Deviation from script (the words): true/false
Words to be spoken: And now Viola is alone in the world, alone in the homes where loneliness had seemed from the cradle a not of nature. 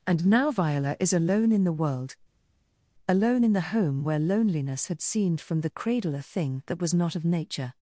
true